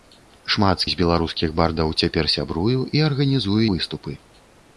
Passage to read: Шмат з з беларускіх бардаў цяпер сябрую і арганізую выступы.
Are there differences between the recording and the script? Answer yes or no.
no